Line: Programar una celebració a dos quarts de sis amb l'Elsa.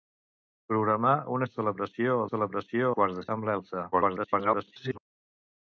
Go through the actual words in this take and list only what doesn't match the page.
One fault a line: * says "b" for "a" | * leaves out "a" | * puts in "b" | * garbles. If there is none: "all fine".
* says "celebració" for "dos"
* leaves out "sis"
* garbles